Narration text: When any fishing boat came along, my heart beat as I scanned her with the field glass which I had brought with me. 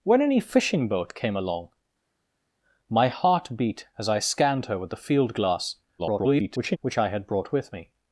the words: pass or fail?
fail